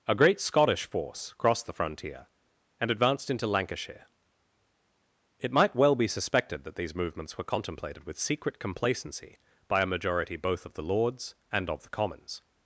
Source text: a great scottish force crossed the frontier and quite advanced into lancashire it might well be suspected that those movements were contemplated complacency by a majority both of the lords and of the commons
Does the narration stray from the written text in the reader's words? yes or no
yes